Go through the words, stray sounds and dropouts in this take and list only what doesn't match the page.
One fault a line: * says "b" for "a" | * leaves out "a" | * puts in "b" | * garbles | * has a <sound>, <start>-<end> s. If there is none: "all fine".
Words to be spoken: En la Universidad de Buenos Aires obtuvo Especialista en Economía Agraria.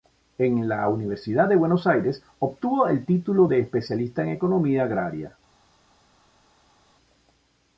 * puts in "el título de"